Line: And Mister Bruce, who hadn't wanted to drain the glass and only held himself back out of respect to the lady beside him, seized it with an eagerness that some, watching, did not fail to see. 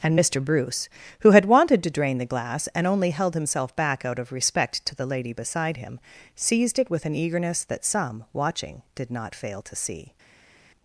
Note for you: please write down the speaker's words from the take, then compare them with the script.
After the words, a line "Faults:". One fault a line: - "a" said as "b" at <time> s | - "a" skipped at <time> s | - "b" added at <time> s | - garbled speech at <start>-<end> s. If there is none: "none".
And Mister Bruce, who had wanted to drain the glass and only held himself back out of respect to the lady beside him, seized it with an eagerness that some, watching, did not fail to see.
Faults:
- "hadn't" said as "had" at 1.3 s